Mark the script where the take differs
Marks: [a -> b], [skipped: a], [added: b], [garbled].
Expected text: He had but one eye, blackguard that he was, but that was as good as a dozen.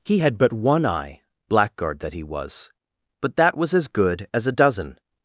He had but one eye, blackguard that he was, but that was as good as a dozen.